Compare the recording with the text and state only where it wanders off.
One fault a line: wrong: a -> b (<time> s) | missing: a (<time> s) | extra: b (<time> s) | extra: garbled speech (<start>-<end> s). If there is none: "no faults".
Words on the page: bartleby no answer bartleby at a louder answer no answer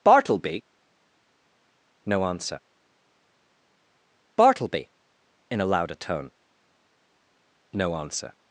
wrong: at -> in (5.5 s)
wrong: answer -> tone (6.0 s)